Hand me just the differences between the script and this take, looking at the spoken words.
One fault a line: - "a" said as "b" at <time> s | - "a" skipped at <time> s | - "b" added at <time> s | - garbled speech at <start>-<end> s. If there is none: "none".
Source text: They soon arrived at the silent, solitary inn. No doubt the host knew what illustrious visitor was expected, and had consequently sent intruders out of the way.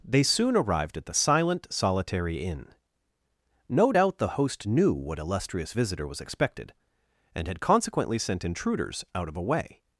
- "the" said as "a" at 9.4 s